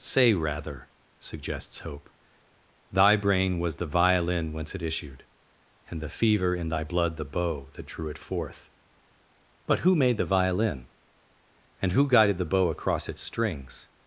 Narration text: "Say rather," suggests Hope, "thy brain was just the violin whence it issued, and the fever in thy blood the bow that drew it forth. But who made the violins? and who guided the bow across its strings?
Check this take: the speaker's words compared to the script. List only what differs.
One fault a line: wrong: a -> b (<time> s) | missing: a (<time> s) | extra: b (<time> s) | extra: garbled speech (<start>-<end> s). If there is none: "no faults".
missing: just (3.7 s)
wrong: violins -> violin (10.2 s)